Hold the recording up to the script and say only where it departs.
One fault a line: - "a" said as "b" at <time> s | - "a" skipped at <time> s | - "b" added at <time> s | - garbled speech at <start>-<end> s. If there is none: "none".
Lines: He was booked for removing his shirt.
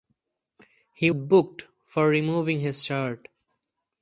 - "was" skipped at 1.1 s